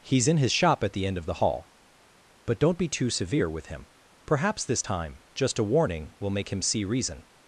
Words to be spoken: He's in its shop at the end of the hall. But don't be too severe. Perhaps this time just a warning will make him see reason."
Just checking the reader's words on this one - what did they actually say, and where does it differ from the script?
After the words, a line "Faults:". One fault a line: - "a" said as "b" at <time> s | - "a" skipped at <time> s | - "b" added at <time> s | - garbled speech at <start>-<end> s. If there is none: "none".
He's in his shop at the end of the hall. But don't be too severe with him. Perhaps this time just a warning will make him see reason."
Faults:
- "its" said as "his" at 0.4 s
- "with him" added at 3.5 s